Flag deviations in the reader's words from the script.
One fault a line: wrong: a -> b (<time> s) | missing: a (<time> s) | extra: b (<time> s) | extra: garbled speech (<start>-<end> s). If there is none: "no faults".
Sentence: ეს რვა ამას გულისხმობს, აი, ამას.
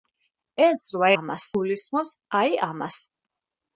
no faults